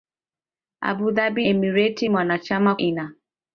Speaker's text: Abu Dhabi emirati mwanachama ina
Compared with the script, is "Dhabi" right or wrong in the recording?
right